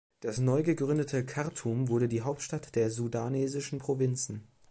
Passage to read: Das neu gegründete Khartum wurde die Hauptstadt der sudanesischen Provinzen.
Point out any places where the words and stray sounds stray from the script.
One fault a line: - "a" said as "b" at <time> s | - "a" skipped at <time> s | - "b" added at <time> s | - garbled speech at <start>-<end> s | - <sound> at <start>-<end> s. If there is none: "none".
none